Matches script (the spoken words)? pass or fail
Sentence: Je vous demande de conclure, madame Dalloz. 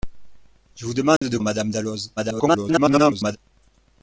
fail